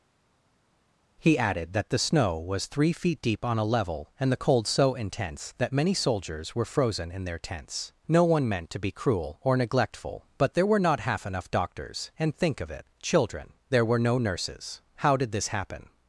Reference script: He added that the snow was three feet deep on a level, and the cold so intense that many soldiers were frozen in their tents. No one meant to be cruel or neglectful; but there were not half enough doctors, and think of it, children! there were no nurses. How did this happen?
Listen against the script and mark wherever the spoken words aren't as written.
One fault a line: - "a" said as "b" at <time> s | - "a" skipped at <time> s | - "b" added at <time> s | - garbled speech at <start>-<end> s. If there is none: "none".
none